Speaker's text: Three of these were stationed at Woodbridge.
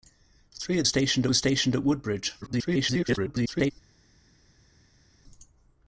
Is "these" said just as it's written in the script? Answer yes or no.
no